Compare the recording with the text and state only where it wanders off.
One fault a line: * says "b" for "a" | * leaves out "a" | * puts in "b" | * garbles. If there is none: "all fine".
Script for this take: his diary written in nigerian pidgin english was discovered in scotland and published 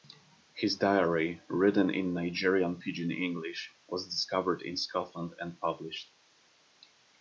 all fine